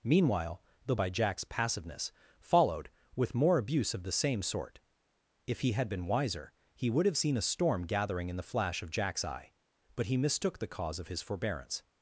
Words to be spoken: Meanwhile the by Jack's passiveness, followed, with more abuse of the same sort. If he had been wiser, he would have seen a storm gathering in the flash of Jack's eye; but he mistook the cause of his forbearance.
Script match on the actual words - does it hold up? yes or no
yes